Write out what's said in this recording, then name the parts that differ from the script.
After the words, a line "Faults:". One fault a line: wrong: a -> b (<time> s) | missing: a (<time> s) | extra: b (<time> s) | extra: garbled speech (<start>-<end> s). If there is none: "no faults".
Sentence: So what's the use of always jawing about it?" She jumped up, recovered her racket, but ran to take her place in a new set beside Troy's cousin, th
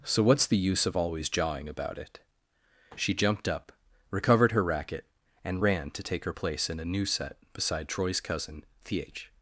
So what's the use of always jawing about it?" She jumped up, recovered her racket, and ran to take her place in a new set beside Troy's cousin, th
Faults:
wrong: but -> and (5.4 s)